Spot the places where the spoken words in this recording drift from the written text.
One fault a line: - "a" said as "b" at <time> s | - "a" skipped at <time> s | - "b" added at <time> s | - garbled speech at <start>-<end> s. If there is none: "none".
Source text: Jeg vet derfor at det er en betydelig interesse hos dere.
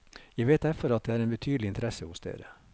none